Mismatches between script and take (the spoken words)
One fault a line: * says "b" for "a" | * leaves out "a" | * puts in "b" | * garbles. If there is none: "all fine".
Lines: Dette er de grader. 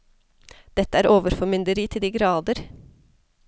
* puts in "overformynderi til"